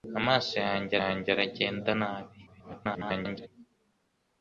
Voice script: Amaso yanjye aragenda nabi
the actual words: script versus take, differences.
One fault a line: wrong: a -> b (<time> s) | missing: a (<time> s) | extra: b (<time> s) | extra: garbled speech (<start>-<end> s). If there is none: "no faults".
extra: yanjye (1.0 s)
extra: garbled speech (2.5-3.5 s)